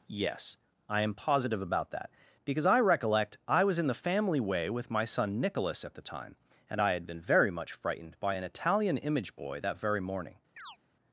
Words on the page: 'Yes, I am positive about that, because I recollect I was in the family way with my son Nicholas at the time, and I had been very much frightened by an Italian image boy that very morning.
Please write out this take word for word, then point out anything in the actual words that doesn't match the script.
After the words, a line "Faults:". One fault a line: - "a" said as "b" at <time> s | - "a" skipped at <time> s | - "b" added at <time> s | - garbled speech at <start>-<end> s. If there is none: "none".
'Yes, I am positive about that, because I recollect I was in the family way with my son Nicholas at the time, and I had been very much frightened by an Italian image boy that very morning.
Faults:
none